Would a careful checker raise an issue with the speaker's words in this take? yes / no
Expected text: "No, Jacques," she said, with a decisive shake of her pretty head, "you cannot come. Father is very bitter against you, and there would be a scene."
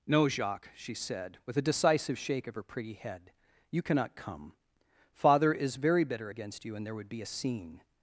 no